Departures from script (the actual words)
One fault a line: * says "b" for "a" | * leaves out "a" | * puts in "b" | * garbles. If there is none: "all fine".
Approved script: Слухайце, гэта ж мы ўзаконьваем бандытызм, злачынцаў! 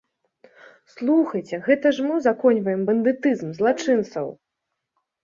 all fine